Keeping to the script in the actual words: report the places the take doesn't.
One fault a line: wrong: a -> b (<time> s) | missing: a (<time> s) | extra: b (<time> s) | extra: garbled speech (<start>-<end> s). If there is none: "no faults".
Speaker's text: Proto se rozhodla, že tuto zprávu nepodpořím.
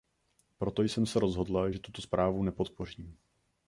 extra: jsem (0.8 s)